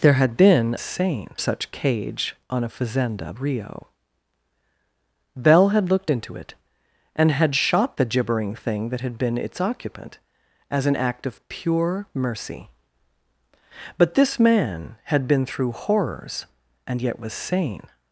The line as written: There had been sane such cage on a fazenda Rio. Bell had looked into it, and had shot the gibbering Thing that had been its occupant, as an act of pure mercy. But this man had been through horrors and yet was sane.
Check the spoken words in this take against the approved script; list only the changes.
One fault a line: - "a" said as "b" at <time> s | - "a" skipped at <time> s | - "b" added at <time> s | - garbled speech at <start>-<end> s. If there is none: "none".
none